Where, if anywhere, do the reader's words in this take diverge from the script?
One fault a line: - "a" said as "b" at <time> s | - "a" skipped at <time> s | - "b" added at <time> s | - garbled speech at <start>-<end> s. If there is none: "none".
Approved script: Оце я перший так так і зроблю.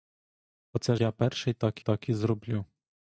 none